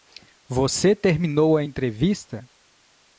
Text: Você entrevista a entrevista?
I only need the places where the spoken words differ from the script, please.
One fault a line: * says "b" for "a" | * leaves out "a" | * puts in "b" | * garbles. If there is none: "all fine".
* says "terminou" for "entrevista"